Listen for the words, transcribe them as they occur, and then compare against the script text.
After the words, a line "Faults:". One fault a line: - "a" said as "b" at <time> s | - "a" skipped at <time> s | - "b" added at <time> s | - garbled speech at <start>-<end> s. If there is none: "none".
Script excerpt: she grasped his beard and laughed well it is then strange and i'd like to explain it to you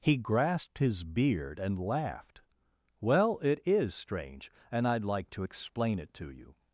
he grasped his beard and laughed well it is strange and i'd like to explain it to you
Faults:
- "she" said as "he" at 0.0 s
- "then" skipped at 3.9 s